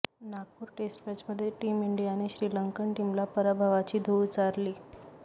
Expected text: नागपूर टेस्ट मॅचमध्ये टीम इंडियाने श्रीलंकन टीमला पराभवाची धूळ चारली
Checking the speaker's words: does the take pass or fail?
pass